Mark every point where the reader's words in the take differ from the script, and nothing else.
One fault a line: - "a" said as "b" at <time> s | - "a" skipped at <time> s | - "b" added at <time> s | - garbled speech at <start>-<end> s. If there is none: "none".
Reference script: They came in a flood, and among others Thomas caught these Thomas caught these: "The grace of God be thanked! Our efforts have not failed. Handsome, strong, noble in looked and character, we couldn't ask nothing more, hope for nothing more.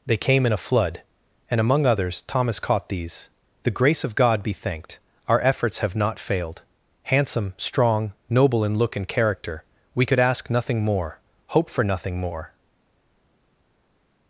- "Thomas caught these" skipped at 3.3 s
- "looked" said as "look" at 8.8 s
- "couldn't" said as "could" at 10.0 s